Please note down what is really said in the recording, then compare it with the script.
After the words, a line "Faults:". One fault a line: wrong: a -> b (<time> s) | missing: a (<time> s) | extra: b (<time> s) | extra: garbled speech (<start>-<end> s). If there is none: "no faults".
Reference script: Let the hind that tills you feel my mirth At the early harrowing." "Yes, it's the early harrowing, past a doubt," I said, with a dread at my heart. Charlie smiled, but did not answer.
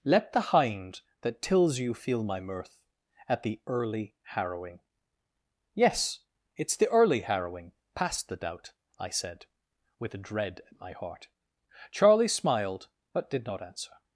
Let the hind that tills you feel my mirth At the early harrowing." "Yes, it's the early harrowing, past the doubt," I said, with a dread at my heart. Charlie smiled, but did not answer.
Faults:
wrong: a -> the (8.3 s)